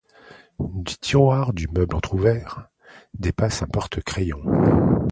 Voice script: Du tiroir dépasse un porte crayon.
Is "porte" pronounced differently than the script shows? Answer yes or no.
no